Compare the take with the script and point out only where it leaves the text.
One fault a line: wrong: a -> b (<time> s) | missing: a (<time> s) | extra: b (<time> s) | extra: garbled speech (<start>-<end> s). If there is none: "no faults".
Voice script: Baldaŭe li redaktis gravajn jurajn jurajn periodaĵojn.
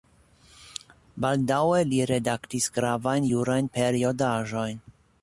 missing: jurajn (3.7 s)